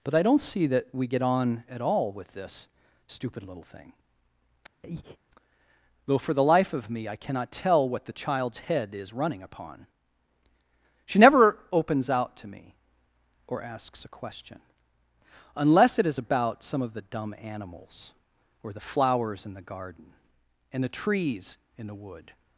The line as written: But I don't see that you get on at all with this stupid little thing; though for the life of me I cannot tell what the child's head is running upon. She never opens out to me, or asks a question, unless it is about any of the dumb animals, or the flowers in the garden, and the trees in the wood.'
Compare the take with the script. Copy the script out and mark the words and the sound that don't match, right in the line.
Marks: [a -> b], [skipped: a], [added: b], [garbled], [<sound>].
But I don't see that [you -> we] get on at all with this stupid little thing; [breath] though for the life of me I cannot tell what the child's head is running upon. She never opens out to me, or asks a question, unless it is about [any -> some] of the dumb animals, or the flowers in the garden, and the trees in the wood.'